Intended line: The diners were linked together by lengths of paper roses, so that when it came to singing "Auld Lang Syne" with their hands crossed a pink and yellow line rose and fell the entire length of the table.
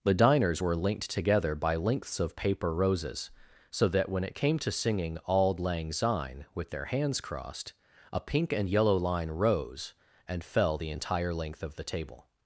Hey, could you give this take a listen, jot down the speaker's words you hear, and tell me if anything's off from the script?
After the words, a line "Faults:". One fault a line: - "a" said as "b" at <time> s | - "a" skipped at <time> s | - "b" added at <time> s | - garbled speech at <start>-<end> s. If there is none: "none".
The diners were linked together by lengths of paper roses, so that when it came to singing "Auld Lang Syne" with their hands crossed a pink and yellow line rose and fell the entire length of the table.
Faults:
none